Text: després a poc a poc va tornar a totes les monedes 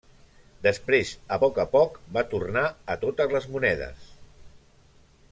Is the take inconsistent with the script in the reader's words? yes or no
no